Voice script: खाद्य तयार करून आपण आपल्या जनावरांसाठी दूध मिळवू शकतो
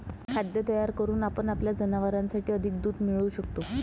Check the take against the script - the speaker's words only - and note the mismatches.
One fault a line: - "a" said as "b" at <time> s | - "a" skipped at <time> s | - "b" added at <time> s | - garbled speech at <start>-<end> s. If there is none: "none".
- "अधिक" added at 2.5 s